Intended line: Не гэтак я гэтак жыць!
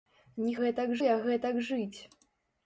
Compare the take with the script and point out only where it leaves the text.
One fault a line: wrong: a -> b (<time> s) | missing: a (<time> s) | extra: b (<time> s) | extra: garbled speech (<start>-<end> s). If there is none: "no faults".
no faults